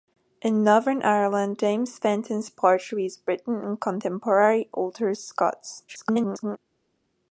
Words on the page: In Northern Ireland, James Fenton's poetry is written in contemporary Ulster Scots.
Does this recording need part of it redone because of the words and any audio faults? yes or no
yes